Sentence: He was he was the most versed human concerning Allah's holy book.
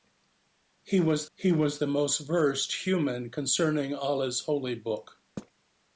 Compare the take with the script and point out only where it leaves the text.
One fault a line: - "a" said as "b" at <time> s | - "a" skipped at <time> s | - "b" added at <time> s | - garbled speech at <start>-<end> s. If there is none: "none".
none